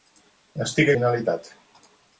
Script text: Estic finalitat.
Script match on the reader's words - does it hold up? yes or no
yes